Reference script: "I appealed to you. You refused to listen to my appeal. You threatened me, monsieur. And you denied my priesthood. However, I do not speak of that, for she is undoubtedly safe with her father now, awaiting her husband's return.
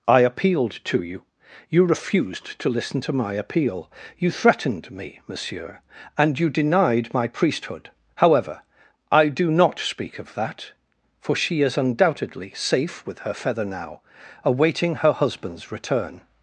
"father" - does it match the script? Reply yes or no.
no